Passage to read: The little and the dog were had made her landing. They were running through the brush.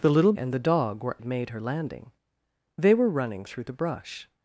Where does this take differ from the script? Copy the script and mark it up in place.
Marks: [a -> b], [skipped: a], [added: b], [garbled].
The little and the dog were had made her landing. They were running through the brush.